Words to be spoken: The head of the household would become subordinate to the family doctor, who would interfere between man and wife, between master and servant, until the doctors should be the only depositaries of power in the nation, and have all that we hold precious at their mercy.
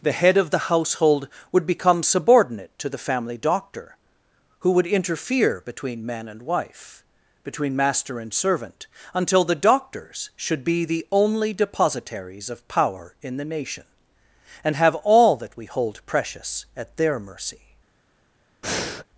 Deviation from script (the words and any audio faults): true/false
true